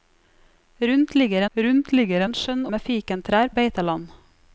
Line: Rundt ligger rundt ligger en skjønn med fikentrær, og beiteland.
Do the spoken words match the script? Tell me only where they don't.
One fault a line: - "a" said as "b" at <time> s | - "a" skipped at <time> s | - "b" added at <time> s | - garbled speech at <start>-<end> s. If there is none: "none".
none